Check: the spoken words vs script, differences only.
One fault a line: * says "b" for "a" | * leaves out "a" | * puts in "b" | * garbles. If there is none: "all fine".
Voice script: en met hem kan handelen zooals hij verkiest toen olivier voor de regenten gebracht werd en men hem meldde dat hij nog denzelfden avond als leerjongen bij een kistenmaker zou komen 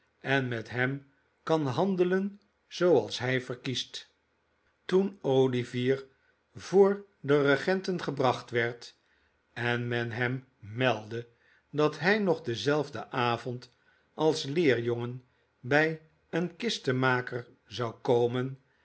all fine